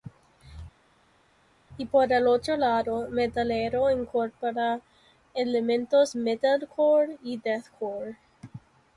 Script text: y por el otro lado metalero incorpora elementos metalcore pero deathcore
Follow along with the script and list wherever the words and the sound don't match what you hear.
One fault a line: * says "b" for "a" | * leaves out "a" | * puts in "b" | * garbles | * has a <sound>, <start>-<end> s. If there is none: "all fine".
* says "y" for "pero"